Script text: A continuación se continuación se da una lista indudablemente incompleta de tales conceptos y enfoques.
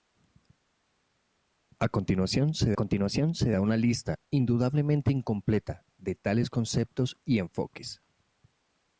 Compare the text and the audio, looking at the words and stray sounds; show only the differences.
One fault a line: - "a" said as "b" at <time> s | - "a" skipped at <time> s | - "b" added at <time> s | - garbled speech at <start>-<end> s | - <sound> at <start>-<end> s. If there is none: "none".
none